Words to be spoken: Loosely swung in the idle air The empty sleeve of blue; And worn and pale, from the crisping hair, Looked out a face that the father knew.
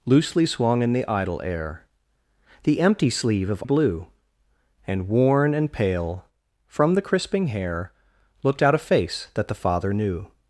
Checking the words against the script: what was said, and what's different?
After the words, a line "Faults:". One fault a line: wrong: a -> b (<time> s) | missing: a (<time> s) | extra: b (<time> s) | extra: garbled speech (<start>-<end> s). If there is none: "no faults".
Loosely swung in the idle air The empty sleeve of blue; And worn and pale, from the crisping hair, Looked out a face that the father knew.
Faults:
no faults